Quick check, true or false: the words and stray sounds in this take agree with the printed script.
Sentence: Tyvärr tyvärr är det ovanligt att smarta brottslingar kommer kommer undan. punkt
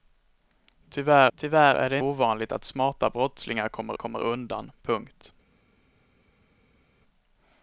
true